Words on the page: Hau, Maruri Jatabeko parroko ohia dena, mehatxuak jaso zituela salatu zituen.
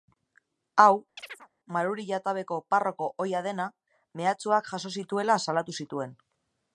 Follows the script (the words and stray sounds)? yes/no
no